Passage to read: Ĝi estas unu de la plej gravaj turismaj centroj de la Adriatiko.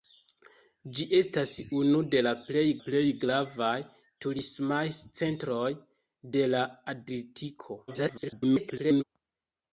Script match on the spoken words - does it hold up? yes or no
no